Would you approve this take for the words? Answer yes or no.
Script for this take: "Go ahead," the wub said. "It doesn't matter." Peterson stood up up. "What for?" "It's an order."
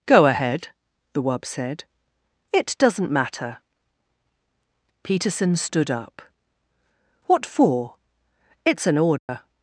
no